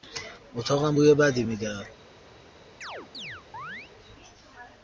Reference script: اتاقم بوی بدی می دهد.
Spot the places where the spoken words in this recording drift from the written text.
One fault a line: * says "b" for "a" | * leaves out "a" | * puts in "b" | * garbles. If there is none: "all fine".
all fine